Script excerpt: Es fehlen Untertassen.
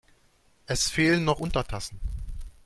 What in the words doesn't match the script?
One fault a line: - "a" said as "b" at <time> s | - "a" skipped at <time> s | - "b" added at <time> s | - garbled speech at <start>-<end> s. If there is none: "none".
- "noch" added at 1.2 s